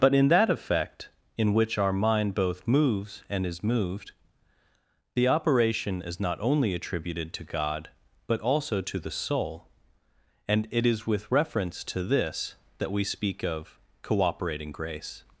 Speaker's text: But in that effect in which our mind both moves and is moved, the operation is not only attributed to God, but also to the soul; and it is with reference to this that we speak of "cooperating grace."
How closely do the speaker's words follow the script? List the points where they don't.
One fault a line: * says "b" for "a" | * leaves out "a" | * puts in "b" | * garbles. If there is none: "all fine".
all fine